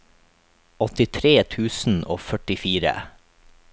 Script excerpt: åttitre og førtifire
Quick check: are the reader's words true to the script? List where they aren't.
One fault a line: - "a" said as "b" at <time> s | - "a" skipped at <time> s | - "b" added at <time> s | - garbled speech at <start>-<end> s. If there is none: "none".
- "tusen" added at 1.6 s